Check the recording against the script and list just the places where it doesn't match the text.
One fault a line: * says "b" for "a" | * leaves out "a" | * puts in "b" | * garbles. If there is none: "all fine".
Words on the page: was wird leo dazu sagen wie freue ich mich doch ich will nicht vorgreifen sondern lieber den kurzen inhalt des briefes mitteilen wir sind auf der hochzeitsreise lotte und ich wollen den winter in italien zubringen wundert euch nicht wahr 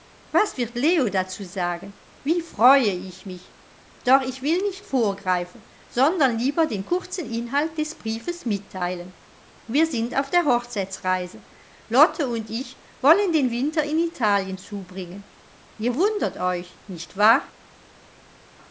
* puts in "ihr"